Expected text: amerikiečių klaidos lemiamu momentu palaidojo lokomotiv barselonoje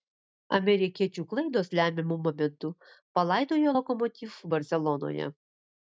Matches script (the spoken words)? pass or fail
pass